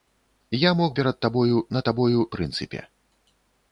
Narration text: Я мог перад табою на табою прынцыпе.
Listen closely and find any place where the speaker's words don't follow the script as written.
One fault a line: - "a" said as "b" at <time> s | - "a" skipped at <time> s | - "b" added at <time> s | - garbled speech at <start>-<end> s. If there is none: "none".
none